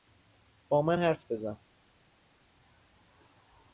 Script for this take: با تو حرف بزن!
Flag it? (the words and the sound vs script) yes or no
yes